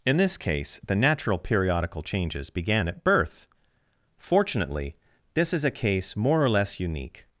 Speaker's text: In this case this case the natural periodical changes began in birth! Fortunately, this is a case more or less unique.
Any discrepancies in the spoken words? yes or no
yes